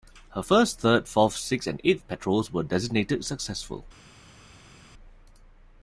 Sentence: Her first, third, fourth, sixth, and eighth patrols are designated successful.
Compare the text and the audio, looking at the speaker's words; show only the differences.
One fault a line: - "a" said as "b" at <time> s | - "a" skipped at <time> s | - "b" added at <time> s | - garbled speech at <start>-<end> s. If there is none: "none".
- "are" said as "were" at 2.5 s